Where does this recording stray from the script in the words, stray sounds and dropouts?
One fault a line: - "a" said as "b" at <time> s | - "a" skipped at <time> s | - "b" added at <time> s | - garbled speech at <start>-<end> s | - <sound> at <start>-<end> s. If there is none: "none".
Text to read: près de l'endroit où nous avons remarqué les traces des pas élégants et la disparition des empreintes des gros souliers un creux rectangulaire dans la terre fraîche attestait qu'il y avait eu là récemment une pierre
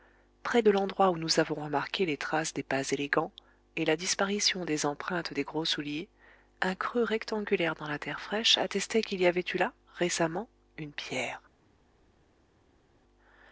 none